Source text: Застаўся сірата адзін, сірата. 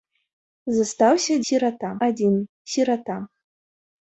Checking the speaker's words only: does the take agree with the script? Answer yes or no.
yes